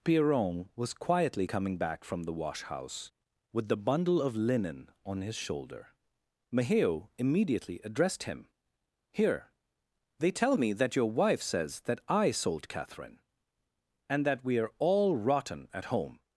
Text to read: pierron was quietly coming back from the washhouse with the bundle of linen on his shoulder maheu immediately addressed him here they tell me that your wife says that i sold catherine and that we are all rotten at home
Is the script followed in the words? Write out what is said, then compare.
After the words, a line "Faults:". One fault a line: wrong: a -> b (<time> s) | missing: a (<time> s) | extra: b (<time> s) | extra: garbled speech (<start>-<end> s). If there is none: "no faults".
pierron was quietly coming back from the washhouse with the bundle of linen on his shoulder maheu immediately addressed him here they tell me that your wife says that i sold catherine and that we are all rotten at home
Faults:
no faults